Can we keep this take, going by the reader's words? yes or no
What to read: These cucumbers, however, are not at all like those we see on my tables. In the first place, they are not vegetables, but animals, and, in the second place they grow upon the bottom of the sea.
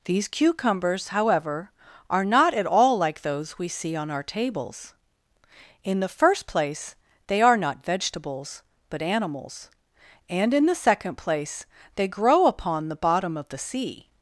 no